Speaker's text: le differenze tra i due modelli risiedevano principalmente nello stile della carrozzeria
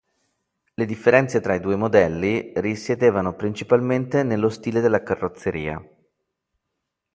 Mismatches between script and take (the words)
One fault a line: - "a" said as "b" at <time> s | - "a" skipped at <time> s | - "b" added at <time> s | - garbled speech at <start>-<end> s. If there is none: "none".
none